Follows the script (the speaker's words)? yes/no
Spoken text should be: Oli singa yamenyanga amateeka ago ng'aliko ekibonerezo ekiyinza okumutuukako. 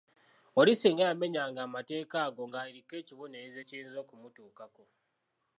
yes